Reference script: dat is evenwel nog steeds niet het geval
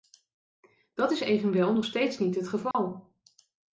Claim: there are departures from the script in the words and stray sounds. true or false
true